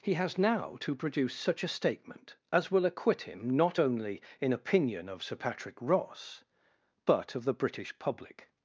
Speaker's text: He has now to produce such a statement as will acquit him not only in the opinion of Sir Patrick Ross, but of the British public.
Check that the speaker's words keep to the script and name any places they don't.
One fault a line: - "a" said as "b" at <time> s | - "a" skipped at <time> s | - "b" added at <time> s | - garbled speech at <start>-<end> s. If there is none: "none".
- "the" skipped at 4.5 s